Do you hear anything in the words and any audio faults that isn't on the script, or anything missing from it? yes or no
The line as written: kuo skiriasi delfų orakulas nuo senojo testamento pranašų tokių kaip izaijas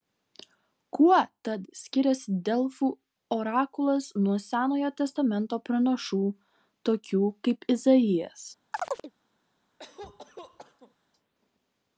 yes